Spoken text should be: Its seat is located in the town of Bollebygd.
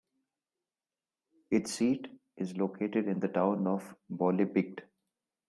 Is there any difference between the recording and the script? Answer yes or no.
no